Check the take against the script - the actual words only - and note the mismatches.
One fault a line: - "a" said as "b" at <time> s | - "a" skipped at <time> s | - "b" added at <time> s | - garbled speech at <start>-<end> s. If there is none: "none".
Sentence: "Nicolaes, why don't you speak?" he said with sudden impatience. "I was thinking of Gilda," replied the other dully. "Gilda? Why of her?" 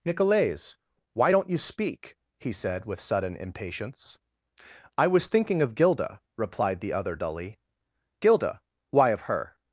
none